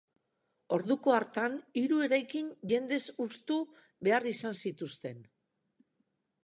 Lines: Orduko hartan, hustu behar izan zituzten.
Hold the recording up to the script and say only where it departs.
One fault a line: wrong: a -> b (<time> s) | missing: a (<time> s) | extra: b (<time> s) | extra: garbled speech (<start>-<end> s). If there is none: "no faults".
extra: hiru eraikin jendez (1.8 s)